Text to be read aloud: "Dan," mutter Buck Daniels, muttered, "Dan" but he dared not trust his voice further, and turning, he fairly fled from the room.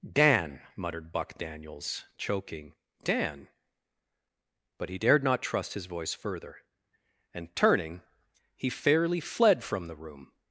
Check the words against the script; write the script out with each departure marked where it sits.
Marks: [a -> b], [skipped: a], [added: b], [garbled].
"Dan," [mutter -> muttered] Buck Daniels, [muttered, -> choking] "Dan" but he dared not trust his voice further, and turning, he fairly fled from the room.